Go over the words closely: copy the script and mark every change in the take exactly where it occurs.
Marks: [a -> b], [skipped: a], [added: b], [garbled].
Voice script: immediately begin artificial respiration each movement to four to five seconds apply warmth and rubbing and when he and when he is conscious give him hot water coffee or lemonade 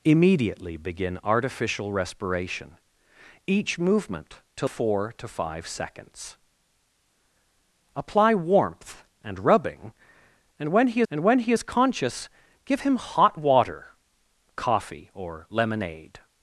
immediately begin artificial respiration each movement to four to five seconds apply warmth and rubbing and when he and when he is conscious give him hot water coffee or lemonade